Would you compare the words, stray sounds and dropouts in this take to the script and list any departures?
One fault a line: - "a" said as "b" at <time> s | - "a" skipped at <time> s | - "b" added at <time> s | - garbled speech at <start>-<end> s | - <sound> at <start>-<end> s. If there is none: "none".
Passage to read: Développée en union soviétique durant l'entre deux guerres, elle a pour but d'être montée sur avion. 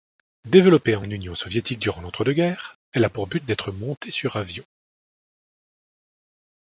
none